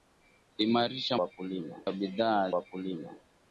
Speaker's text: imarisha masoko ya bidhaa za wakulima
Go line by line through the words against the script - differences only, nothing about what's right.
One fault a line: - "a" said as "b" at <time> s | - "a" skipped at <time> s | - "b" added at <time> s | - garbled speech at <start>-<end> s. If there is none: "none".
- "masoko" said as "wakulima" at 1.2 s
- "za" skipped at 2.5 s